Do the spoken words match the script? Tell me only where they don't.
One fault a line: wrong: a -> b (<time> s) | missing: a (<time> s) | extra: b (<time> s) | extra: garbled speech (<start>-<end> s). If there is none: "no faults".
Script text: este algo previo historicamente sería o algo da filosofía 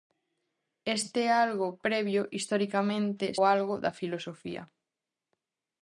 missing: sería (3.4 s)